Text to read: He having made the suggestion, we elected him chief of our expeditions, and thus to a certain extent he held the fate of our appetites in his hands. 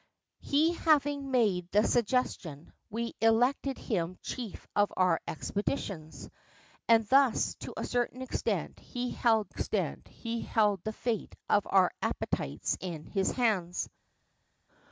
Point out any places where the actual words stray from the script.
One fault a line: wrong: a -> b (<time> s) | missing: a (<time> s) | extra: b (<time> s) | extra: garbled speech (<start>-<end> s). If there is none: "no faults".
extra: extent he held (9.5 s)